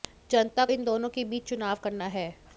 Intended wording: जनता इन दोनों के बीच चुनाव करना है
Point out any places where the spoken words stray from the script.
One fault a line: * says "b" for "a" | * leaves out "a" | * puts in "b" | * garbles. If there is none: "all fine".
all fine